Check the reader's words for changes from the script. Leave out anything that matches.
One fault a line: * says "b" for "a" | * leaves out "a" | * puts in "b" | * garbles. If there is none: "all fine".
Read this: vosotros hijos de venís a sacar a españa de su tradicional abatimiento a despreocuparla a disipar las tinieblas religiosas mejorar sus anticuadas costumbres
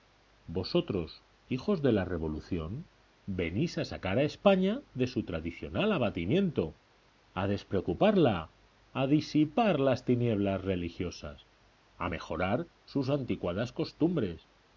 * puts in "la revolución"
* puts in "a"